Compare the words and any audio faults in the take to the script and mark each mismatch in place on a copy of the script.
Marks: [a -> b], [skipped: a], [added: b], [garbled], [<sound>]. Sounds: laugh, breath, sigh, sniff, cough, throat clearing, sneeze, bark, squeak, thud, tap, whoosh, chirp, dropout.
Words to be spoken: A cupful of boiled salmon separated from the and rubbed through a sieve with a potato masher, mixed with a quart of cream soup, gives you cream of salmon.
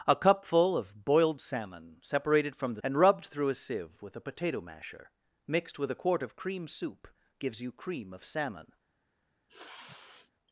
A cupful of boiled salmon separated from the and rubbed through a sieve with a potato masher, mixed with a quart of cream soup, gives you cream of salmon. [sniff]